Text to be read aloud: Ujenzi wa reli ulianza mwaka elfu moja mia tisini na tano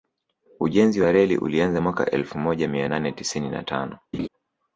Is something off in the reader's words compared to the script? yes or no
yes